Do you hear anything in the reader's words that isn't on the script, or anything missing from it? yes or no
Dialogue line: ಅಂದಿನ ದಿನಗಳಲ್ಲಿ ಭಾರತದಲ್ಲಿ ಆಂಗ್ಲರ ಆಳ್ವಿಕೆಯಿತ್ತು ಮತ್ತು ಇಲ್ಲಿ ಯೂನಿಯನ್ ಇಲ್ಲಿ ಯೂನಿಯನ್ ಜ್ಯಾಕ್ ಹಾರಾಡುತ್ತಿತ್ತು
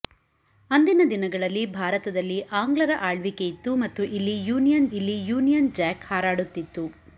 no